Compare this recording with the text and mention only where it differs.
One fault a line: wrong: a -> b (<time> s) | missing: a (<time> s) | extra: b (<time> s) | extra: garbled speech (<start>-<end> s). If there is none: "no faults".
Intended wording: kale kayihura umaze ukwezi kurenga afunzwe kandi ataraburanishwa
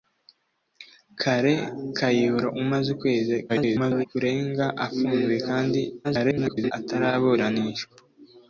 extra: garbled speech (3.5-4.1 s)
extra: garbled speech (6.0-6.7 s)